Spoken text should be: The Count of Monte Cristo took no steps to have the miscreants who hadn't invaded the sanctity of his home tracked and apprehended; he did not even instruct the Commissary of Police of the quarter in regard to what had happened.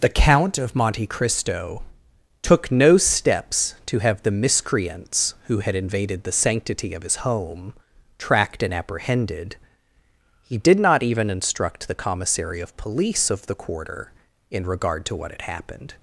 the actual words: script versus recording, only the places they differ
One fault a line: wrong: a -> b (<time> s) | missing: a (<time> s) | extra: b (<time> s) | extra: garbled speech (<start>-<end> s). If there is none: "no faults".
wrong: hadn't -> had (5.6 s)